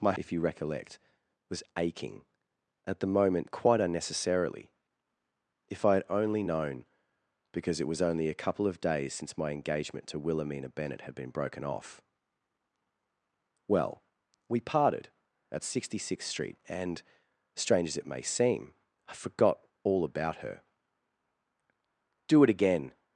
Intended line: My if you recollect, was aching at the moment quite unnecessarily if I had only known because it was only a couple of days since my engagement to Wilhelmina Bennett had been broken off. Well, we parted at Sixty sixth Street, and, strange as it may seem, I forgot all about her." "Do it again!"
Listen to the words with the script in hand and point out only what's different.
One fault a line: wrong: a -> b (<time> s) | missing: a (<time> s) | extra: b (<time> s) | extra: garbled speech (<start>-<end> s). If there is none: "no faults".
no faults